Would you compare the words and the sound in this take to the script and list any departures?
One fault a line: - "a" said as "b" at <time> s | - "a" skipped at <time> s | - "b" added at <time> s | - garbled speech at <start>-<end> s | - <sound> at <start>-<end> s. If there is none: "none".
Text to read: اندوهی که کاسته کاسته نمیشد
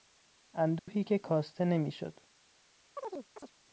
- dropout at 0.8-0.9 s
- "کاسته" skipped at 1.7 s
- chirp at 3.0-3.5 s